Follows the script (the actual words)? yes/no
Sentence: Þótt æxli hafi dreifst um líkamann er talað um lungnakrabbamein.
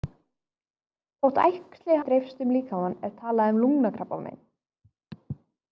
no